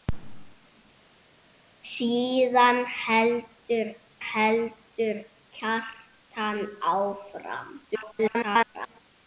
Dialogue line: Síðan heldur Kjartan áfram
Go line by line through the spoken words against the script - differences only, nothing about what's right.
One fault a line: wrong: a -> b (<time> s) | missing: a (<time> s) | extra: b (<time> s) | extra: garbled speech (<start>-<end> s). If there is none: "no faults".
extra: heldur (4.2 s)
extra: garbled speech (7.9-9.0 s)